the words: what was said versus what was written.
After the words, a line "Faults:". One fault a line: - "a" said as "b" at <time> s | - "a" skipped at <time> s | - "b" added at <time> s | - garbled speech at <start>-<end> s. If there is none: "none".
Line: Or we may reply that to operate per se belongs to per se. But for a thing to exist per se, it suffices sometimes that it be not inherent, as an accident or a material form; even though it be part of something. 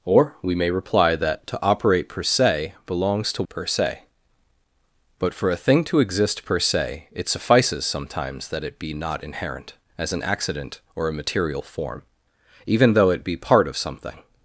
Or we may reply that to operate per se belongs to per se. But for a thing to exist per se, it suffices sometimes that it be not inherent, as an accident or a material form; even though it be part of something.
Faults:
none